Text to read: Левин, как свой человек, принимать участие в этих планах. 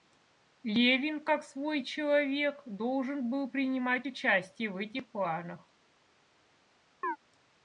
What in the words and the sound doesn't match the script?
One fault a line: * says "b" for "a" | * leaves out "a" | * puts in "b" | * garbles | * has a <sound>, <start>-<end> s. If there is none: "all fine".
* puts in "должен был"
* has a chirp, 7.0-7.2 s